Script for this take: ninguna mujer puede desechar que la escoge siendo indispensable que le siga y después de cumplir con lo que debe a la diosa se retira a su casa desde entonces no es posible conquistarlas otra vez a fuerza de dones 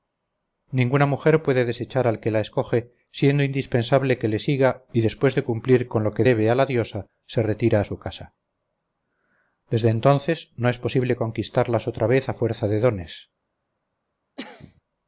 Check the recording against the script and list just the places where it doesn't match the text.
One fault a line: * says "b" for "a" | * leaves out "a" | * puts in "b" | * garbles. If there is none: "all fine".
* puts in "al"